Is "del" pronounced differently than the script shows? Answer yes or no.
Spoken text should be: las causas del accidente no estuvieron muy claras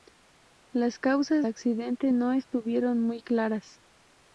yes